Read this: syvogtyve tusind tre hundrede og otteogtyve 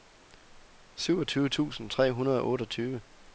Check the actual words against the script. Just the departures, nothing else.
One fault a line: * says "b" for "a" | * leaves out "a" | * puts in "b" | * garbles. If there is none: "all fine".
all fine